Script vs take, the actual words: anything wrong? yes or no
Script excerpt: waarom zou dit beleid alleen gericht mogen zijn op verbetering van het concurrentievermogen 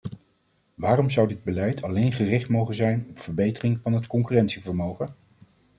no